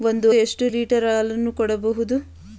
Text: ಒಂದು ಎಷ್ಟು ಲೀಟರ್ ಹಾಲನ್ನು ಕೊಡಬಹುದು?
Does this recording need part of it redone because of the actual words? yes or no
no